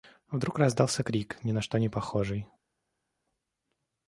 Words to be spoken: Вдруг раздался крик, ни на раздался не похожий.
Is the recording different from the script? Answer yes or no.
yes